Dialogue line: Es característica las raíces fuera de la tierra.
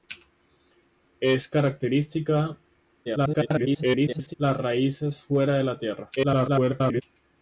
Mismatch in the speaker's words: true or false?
true